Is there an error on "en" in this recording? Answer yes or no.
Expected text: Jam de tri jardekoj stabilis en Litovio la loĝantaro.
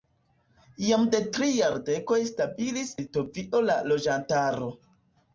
yes